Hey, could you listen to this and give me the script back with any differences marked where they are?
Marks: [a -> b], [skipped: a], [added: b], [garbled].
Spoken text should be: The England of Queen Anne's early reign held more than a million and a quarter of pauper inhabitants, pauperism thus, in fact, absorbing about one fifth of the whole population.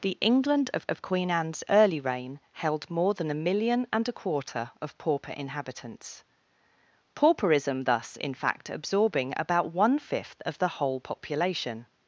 The England of [added: of] Queen Anne's early reign held more than a million and a quarter of pauper inhabitants, pauperism thus, in fact, absorbing about one fifth of the whole population.